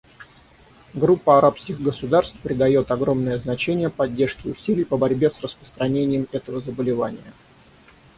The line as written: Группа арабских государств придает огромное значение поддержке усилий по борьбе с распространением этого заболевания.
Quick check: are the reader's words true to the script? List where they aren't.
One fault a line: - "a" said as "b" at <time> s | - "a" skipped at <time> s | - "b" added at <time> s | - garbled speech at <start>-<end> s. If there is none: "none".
none